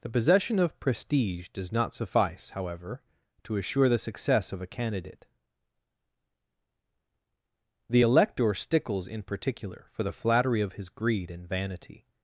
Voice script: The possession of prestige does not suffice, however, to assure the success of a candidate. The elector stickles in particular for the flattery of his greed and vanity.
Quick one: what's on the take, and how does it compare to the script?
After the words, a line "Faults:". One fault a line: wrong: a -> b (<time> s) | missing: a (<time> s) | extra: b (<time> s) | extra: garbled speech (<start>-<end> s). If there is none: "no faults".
The possession of prestige does not suffice, however, to assure the success of a candidate. The elector stickles in particular for the flattery of his greed and vanity.
Faults:
no faults